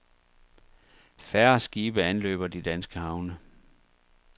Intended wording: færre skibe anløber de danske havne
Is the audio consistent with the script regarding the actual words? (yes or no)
yes